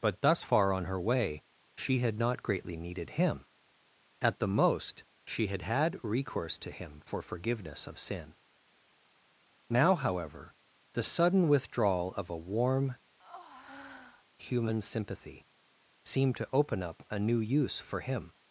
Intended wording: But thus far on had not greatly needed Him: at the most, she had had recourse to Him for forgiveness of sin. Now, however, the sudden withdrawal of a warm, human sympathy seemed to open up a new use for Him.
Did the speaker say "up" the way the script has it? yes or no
yes